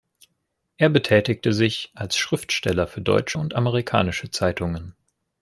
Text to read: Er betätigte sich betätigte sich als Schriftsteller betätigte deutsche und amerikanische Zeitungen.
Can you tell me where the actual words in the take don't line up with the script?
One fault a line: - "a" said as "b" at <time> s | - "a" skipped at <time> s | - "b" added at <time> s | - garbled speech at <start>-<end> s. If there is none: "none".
- "betätigte sich" skipped at 1.9 s
- "betätigte" said as "für" at 2.9 s